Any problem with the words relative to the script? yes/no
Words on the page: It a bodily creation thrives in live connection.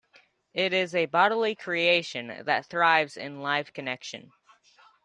yes